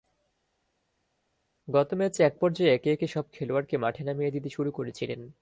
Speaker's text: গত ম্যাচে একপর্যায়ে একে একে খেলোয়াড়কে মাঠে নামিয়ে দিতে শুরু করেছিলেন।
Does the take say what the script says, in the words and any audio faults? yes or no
no